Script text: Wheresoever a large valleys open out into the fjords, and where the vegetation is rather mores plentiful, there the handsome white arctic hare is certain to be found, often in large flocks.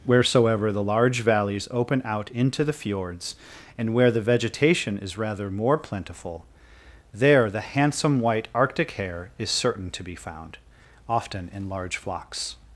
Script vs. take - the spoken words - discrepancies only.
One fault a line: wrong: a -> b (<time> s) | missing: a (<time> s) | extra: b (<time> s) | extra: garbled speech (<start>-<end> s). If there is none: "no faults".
wrong: a -> the (0.7 s)
wrong: mores -> more (5.5 s)